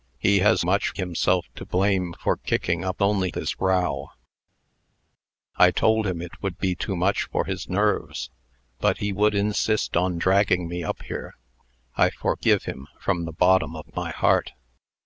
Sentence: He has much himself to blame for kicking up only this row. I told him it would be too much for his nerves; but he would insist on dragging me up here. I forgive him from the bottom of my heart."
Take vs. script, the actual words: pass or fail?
pass